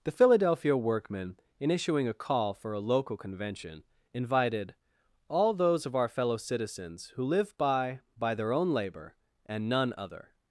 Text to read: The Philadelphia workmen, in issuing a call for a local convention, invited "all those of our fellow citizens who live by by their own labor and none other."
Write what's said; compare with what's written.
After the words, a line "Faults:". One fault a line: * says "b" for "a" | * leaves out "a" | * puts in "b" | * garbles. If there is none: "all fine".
The Philadelphia workmen, in issuing a call for a local convention, invited "all those of our fellow citizens who live by by their own labor and none other."
Faults:
all fine